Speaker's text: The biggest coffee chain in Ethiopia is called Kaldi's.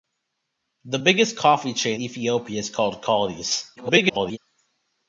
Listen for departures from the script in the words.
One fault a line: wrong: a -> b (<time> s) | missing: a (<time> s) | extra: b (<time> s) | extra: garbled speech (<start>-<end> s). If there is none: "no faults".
missing: in (2.0 s)
extra: garbled speech (3.8-4.4 s)